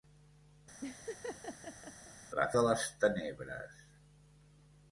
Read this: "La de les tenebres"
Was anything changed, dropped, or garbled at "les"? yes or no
no